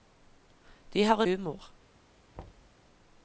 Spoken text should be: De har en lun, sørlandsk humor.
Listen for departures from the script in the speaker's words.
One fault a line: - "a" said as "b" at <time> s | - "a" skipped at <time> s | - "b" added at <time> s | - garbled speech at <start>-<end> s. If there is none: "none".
- "en lun sørlandsk" skipped at 1.2 s